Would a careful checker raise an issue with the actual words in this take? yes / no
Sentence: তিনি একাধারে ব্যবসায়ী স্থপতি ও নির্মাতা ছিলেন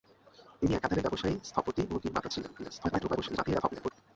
yes